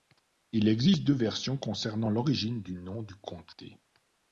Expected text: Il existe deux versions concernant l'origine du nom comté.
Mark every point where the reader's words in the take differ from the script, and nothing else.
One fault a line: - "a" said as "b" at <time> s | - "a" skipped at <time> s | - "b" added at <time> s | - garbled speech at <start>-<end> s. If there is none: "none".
- "du" added at 3.0 s